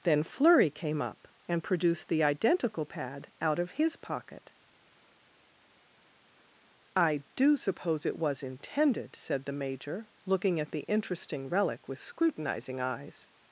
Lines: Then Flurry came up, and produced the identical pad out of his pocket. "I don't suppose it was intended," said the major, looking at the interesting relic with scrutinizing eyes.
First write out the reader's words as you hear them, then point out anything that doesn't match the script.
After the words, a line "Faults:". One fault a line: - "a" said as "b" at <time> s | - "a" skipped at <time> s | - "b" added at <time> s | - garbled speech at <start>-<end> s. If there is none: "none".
Then Flurry came up, and produced the identical pad out of his pocket. "I do suppose it was intended," said the major, looking at the interesting relic with scrutinizing eyes.
Faults:
- "don't" said as "do" at 7.4 s